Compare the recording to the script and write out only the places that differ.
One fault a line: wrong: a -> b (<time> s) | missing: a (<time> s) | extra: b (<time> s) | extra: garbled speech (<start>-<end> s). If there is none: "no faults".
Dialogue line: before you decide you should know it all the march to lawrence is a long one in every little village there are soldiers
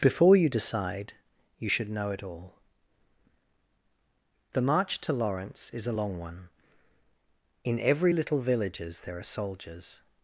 wrong: village -> villages (8.4 s)